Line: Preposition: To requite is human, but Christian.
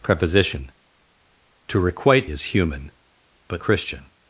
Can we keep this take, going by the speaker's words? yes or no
yes